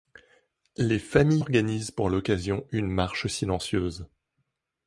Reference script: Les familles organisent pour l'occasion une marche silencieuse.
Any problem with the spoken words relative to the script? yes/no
no